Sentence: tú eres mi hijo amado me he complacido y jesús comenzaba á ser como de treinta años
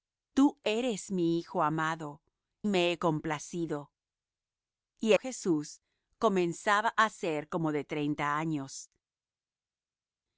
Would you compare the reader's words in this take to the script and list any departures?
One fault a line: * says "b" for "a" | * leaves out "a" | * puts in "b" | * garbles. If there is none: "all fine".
all fine